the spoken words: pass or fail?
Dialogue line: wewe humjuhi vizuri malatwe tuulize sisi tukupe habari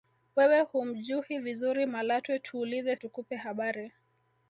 fail